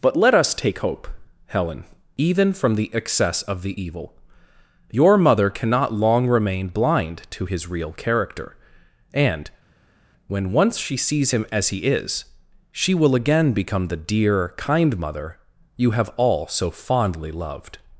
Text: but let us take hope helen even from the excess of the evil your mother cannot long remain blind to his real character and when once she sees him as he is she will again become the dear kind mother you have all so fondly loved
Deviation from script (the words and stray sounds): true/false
false